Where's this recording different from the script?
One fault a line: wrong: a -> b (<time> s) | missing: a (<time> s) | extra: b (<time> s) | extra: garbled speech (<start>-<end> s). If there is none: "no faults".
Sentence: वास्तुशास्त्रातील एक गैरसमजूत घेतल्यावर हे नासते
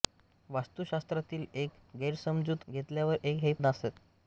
no faults